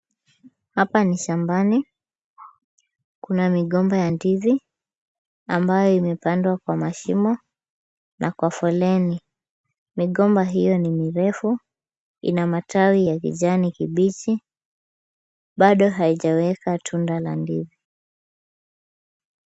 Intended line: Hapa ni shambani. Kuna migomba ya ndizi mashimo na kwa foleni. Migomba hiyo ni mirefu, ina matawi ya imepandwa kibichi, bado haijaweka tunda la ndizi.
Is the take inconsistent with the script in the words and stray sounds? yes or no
yes